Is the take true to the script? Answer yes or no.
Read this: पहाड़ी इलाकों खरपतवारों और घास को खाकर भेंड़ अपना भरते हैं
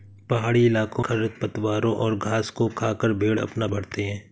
yes